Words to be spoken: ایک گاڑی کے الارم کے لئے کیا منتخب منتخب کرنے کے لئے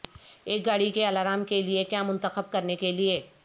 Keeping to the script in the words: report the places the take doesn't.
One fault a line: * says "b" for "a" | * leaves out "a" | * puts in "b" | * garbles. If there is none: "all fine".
* leaves out "منتخب"